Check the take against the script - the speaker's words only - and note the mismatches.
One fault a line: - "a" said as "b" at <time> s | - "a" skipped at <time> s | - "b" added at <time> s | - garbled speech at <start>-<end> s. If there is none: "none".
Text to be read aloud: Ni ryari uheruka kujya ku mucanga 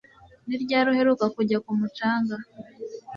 none